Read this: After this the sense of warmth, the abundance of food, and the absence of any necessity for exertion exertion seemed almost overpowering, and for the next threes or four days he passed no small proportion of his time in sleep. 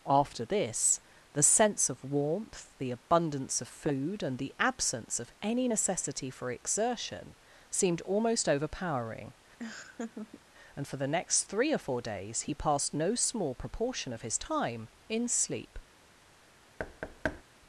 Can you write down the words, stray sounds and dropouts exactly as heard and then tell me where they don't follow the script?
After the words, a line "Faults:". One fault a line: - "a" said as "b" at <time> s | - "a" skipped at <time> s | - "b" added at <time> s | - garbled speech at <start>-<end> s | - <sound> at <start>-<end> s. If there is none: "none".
After this the sense of warmth, the abundance of food, and the absence of any necessity for exertion seemed almost overpowering, and for the next three or four days he passed no small proportion of his time in sleep.
Faults:
- "exertion" skipped at 7.3 s
- laugh at 9.6-10.4 s
- "threes" said as "three" at 11.4 s
- thud at 16.8-17.4 s